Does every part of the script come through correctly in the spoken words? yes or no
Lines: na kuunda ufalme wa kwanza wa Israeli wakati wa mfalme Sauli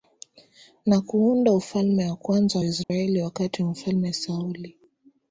yes